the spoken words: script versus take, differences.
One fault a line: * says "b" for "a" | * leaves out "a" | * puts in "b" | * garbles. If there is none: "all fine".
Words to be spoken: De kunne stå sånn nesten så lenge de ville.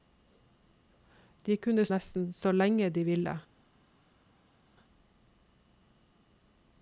* leaves out "stå sånn"